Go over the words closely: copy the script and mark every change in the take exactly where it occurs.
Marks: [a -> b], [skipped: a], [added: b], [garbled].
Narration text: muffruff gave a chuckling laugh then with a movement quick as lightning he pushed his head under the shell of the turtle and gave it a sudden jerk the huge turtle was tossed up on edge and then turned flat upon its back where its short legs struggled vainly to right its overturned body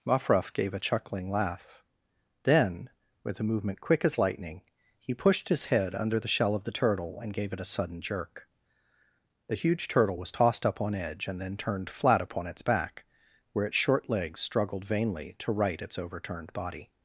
muffruff gave a chuckling laugh then with a movement quick as lightning he pushed his head under the shell of the turtle and gave it a sudden jerk the huge turtle was tossed up on edge and then turned flat upon its back where its short legs struggled vainly to right its overturned body